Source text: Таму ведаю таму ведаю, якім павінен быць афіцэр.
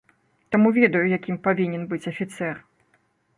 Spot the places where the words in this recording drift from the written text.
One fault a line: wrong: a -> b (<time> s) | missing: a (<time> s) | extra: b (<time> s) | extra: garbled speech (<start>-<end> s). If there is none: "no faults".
missing: таму ведаю (1.0 s)